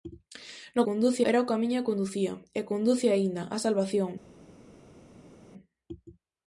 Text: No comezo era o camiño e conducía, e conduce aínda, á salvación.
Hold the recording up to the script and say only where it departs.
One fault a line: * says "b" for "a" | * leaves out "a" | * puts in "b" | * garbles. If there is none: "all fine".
* says "conduce" for "comezo"